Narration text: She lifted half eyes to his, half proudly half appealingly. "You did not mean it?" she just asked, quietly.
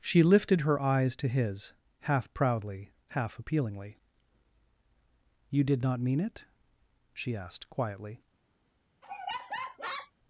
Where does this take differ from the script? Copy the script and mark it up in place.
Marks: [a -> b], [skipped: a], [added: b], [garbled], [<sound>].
She lifted [half -> her] eyes to his, half proudly half appealingly. "You did not mean it?" she [skipped: just] asked, quietly. [laugh]